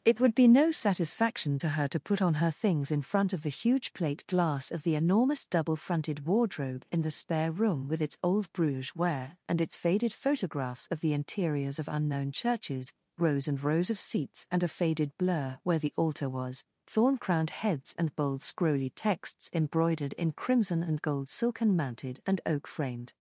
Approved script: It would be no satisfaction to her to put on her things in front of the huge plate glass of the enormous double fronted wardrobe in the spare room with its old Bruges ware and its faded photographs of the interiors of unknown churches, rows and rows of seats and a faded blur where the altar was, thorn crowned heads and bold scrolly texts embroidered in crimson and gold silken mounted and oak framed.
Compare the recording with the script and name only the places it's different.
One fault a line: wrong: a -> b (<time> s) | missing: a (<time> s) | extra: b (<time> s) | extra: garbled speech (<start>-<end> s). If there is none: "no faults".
no faults